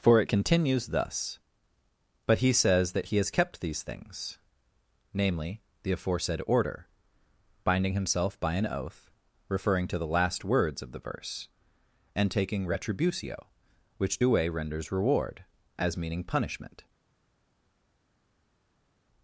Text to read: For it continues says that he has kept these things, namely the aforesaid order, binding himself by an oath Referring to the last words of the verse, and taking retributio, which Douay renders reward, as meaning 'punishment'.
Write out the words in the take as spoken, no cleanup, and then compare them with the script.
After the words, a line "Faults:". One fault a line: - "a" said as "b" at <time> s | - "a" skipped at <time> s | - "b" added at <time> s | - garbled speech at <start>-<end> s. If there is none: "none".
For it continues thus: "But he says that he has kept these things, namely the aforesaid order, binding himself by an oath Referring to the last words of the verse, and taking retributio, which Douay renders reward, as meaning 'punishment'.
Faults:
- "thus But he" added at 0.9 s